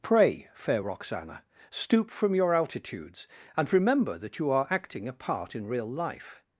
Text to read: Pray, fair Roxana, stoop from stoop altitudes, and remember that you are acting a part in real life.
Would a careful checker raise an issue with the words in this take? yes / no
yes